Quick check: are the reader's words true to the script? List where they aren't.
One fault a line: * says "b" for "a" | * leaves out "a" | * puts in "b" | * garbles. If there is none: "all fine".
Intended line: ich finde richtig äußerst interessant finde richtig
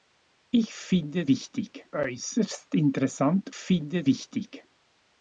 all fine